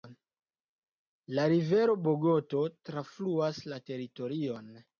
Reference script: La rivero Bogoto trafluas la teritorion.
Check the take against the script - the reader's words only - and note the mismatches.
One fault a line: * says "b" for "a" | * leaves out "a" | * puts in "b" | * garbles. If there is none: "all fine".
all fine